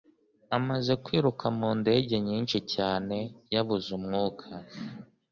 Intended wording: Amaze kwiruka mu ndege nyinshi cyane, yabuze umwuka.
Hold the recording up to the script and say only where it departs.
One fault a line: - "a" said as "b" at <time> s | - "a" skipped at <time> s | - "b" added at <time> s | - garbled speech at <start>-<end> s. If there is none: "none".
none